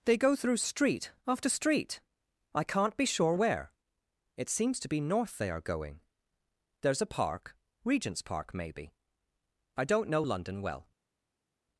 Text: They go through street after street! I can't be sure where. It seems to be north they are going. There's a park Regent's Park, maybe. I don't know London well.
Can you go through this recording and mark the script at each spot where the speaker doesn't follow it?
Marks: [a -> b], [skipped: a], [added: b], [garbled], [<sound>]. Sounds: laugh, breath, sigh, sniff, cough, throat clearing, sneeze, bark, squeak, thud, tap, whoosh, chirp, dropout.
They go through street after street! I can't be sure where. It seems to be north they are going. There's a park Regent's Park, maybe. I don't know London well.